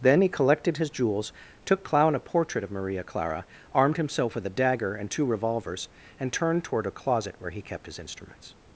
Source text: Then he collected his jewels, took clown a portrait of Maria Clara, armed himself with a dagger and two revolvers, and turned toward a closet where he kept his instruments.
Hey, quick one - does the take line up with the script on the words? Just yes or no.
yes